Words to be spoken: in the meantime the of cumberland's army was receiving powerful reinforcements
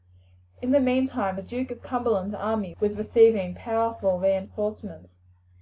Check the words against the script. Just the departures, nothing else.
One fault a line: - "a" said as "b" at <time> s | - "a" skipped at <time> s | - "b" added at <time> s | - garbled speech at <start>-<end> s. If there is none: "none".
- "duke" added at 1.4 s